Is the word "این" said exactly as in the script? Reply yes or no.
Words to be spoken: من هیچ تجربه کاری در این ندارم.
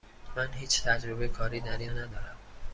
yes